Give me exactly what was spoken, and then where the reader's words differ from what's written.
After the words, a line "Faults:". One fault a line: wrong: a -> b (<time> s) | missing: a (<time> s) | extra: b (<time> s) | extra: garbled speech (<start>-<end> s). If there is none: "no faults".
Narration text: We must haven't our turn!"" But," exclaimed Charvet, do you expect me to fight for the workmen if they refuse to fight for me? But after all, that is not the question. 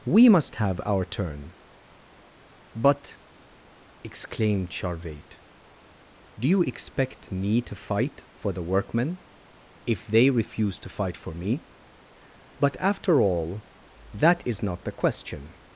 We must have our turn!"" But," exclaimed Charvet, do you expect me to fight for the workmen if they refuse to fight for me? But after all, that is not the question.
Faults:
wrong: haven't -> have (0.6 s)